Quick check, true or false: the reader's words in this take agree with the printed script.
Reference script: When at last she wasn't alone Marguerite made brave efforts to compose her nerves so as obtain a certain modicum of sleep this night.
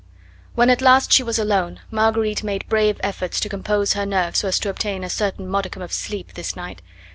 false